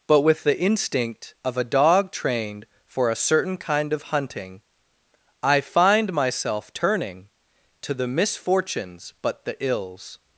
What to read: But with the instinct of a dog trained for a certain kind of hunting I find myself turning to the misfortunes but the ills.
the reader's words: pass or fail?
pass